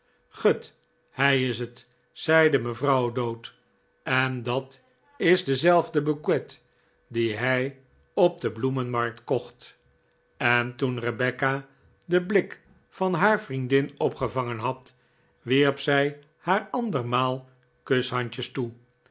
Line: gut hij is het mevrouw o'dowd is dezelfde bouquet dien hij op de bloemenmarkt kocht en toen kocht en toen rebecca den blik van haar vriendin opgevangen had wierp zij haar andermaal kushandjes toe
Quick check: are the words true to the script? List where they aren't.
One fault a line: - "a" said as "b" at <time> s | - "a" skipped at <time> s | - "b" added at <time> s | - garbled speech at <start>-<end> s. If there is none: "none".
- "zeide" added at 2.1 s
- "en dat" added at 4.0 s
- "kocht en toen" skipped at 11.0 s